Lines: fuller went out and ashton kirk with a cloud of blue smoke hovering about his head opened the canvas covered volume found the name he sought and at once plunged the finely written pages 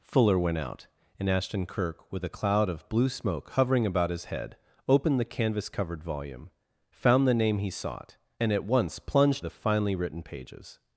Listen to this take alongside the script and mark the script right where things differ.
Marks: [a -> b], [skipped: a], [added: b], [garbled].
fuller went out and ashton kirk with a cloud of blue smoke hovering about his head opened the canvas covered volume found the name he sought and at once plunged the finely written pages